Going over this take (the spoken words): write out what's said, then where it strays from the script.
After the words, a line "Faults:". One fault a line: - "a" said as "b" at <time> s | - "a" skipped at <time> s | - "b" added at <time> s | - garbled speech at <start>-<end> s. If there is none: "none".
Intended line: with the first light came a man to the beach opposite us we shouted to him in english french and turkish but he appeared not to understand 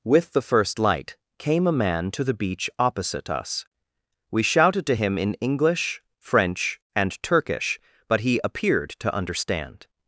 with the first light came a man to the beach opposite us we shouted to him in english french and turkish but he appeared to understand
Faults:
- "not" skipped at 8.9 s